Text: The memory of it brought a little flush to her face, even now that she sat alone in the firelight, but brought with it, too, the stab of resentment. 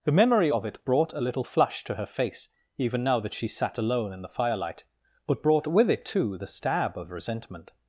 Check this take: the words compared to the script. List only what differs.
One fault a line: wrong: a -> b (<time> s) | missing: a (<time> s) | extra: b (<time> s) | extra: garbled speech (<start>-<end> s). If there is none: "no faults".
no faults